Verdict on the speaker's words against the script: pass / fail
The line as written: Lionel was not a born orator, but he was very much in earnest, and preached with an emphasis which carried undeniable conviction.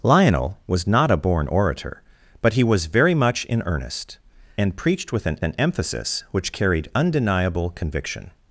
fail